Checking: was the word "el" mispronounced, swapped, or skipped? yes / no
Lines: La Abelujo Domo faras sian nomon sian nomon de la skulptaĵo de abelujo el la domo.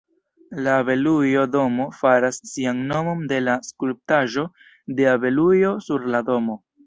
yes